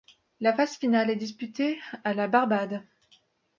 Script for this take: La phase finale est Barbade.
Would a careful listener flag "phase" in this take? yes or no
no